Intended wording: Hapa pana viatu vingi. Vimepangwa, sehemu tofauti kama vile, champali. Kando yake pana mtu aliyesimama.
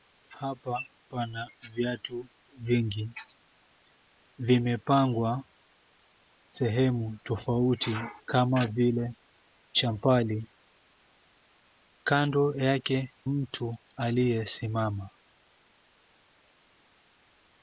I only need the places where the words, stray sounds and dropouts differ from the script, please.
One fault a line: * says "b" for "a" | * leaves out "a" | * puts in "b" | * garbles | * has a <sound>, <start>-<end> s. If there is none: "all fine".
* leaves out "pana"